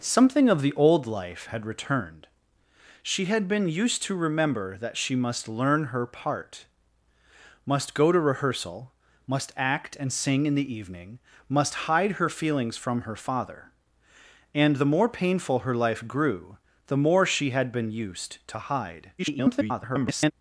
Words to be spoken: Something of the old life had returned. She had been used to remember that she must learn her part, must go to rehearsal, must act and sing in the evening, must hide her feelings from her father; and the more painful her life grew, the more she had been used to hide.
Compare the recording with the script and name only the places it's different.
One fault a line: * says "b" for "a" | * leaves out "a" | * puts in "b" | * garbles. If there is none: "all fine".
* garbles